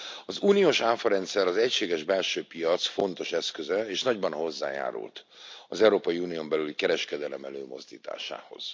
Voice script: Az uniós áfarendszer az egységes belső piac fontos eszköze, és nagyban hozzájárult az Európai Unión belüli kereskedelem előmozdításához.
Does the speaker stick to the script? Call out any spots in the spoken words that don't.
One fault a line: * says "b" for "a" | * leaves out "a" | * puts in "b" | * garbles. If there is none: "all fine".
all fine